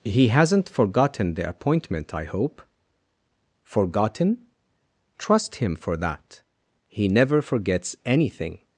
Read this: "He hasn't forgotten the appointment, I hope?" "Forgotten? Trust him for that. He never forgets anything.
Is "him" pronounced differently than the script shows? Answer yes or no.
no